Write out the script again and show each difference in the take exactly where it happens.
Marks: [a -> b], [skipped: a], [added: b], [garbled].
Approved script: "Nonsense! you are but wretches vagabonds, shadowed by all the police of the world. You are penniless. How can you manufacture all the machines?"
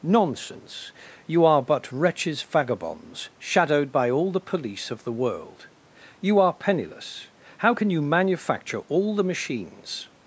"Nonsense! you are but wretches vagabonds, shadowed by all the police of the world. You are penniless. How can you manufacture all the machines?"